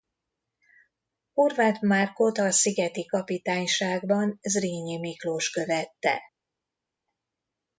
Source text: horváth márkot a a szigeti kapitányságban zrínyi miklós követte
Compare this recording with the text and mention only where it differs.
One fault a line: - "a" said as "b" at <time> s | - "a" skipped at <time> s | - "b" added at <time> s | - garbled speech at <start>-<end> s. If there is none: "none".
- "a" skipped at 2.5 s